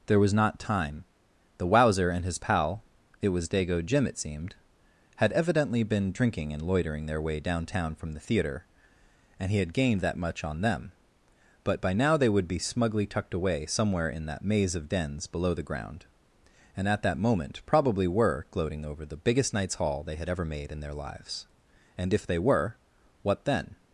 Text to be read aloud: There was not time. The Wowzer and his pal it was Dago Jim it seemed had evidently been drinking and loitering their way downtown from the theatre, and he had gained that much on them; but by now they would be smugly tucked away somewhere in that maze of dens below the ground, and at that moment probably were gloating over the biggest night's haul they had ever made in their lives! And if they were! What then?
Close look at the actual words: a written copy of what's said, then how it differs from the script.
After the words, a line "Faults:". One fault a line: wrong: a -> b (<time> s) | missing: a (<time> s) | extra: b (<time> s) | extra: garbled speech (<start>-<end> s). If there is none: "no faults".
There was not time. The Wowzer and his pal it was Dago Jim it seemed had evidently been drinking and loitering their way downtown from the theatre, and he had gained that much on them; but by now they would be smugly tucked away somewhere in that maze of dens below the ground, and at that moment probably were gloating over the biggest night's haul they had ever made in their lives! And if they were! What then?
Faults:
no faults